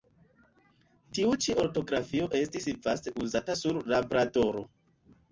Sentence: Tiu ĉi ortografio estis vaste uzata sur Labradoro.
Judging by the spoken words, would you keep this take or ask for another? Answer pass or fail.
pass